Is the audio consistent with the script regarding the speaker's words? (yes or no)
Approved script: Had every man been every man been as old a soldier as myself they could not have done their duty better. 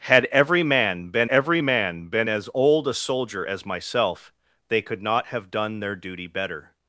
yes